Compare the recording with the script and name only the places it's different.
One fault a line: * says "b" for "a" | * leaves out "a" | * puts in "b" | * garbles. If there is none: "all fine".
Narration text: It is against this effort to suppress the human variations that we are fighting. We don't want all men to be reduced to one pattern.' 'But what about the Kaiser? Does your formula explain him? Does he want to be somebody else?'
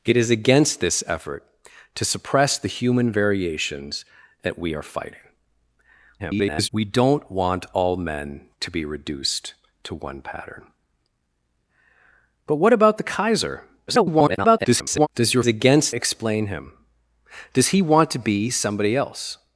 * garbles
* garbles
* says "against" for "formula"